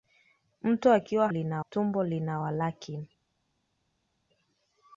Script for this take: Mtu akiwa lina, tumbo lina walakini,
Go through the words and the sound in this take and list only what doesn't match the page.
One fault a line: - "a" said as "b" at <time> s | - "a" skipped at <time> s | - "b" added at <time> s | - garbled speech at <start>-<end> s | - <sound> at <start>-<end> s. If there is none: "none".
none